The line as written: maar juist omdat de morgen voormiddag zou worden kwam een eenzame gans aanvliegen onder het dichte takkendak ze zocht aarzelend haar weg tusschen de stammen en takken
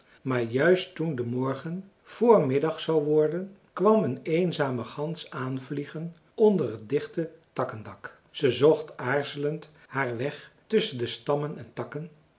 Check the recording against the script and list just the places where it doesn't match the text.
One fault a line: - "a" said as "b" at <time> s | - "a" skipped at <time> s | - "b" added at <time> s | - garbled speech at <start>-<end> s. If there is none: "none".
- "omdat" said as "toen" at 0.9 s